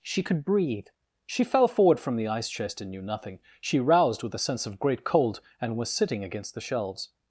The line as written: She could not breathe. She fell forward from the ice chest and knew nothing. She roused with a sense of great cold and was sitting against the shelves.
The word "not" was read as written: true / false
false